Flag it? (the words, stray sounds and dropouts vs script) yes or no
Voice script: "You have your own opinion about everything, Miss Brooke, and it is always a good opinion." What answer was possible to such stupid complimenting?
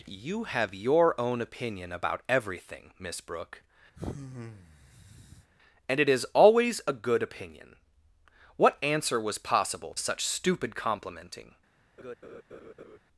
yes